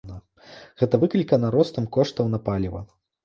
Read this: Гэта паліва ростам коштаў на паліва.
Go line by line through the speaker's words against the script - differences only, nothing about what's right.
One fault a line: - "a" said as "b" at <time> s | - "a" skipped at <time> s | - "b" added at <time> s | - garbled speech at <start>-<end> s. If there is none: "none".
- "паліва" said as "выклікана" at 1.0 s